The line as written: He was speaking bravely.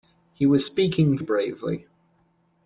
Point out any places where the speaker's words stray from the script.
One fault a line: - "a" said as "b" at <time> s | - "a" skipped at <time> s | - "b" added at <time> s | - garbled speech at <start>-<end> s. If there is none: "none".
none